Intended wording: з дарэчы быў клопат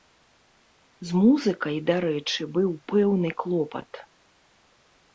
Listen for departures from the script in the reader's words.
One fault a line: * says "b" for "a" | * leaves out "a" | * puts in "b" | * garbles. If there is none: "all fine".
* puts in "музыкай"
* puts in "пэўны"